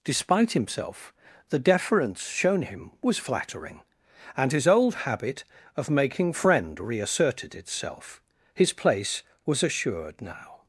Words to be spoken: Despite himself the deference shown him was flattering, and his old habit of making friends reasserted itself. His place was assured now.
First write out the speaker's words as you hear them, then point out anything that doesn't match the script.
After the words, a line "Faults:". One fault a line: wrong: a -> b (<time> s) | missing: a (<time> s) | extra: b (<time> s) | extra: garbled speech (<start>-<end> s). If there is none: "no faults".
Despite himself the deference shown him was flattering, and his old habit of making friend reasserted itself. His place was assured now.
Faults:
wrong: friends -> friend (6.3 s)